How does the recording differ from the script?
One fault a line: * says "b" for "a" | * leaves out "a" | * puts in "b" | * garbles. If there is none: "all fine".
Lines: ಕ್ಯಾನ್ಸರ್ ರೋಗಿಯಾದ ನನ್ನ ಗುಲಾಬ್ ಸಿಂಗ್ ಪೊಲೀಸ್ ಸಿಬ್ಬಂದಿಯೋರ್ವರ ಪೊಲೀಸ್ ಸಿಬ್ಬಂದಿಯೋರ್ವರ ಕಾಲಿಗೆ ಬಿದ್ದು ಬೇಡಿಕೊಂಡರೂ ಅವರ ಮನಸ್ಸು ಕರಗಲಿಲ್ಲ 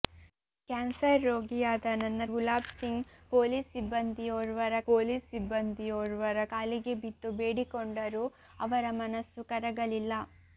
all fine